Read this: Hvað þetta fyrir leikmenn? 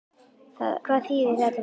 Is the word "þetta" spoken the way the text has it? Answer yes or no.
yes